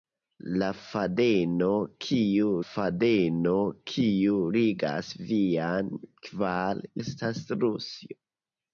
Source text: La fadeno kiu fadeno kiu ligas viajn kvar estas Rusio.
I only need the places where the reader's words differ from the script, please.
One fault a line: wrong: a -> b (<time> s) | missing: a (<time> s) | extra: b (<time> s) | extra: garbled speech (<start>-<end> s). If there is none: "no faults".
no faults